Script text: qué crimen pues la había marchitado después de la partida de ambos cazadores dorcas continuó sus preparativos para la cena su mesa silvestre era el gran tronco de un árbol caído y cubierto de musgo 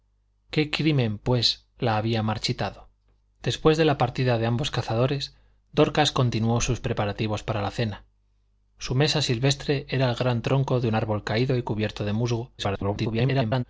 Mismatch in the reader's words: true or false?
true